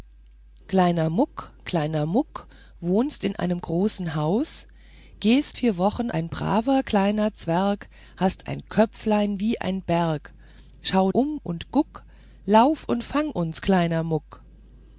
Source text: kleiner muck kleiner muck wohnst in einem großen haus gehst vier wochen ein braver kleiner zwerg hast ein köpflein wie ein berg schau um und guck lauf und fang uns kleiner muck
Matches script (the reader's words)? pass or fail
pass